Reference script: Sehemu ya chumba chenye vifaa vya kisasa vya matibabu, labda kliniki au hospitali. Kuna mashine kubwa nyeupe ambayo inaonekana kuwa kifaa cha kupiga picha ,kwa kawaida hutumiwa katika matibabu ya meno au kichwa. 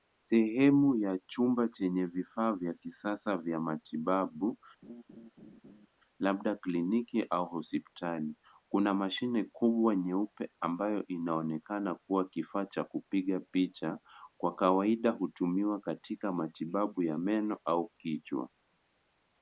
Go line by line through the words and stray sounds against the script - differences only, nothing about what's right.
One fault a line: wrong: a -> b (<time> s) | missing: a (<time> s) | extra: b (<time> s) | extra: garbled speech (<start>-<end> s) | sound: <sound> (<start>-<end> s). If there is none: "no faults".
sound: laugh (4.8-5.9 s)